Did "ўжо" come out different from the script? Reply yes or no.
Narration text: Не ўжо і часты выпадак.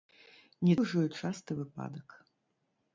no